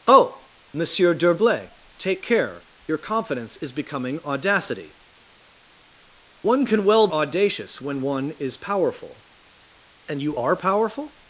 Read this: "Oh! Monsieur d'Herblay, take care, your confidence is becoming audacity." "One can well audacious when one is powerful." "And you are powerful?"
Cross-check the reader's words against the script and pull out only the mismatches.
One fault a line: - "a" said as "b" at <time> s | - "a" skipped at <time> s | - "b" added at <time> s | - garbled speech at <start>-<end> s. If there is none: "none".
none